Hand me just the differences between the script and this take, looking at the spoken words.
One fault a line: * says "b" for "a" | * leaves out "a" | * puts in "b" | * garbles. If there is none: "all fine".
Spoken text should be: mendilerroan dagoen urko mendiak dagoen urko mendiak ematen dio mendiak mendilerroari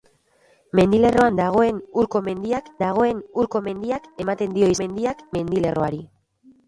all fine